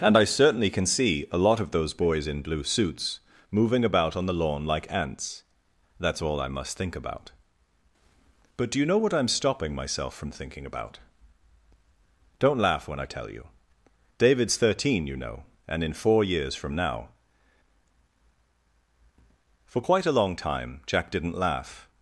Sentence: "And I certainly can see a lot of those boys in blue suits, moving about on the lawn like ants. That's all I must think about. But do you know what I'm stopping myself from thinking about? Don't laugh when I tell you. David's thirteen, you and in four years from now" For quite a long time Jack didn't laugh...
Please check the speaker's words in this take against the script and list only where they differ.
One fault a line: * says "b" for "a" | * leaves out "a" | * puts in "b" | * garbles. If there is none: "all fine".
* puts in "know"